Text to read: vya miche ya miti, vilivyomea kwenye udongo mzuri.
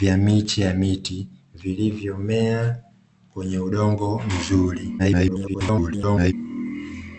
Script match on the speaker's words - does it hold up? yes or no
no